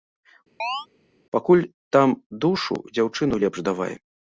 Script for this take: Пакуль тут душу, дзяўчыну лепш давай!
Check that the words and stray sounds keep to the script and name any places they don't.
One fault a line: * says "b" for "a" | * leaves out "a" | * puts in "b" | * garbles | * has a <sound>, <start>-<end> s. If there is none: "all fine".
* has a chirp, 0.6-0.9 s
* says "там" for "тут"